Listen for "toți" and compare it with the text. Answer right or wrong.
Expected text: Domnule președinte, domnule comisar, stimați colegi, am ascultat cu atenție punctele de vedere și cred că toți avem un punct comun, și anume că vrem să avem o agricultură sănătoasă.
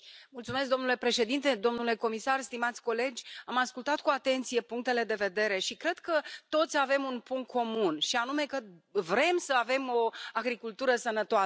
right